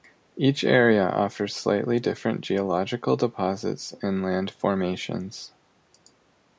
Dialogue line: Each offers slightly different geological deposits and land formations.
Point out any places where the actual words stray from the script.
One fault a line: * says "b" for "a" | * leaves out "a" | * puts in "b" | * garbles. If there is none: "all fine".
* puts in "area"